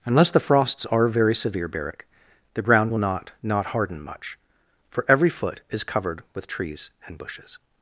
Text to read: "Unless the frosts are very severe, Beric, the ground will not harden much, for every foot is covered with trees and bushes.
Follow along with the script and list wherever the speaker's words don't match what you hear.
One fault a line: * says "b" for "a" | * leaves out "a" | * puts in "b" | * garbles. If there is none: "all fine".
* puts in "not"